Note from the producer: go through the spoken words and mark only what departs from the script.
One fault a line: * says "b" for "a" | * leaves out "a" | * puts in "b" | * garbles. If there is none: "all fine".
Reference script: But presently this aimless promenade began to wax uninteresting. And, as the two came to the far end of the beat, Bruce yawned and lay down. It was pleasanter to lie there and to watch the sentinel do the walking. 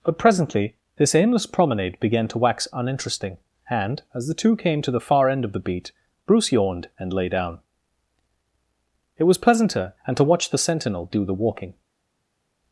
* leaves out "to lie there"